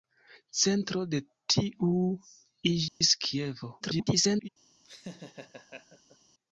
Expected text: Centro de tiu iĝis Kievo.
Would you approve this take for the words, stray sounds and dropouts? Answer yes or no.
no